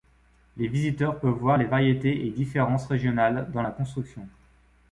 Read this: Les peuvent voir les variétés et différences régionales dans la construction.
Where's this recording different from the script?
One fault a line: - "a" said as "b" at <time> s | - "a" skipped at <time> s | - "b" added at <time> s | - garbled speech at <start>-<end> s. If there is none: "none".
- "visiteurs" added at 0.7 s